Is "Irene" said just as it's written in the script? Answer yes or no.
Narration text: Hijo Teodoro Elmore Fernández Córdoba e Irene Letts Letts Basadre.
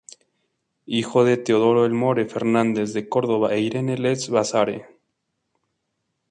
yes